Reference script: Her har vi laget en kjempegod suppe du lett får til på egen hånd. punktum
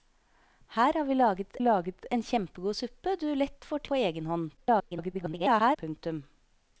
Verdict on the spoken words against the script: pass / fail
fail